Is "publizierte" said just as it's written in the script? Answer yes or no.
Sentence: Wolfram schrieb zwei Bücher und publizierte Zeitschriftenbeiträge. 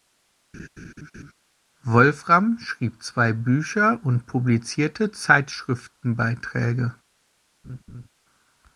yes